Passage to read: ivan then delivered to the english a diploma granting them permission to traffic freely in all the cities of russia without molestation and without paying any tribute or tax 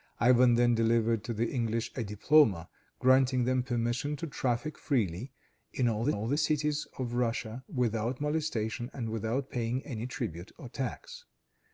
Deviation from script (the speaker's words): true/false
true